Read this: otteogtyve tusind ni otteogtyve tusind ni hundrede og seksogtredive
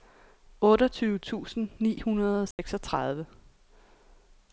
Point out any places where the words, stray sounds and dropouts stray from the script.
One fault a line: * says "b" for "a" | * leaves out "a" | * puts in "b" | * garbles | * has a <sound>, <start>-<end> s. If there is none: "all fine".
* leaves out "otteogtyve tusind ni"
* has a dropout, 2.5-2.6 s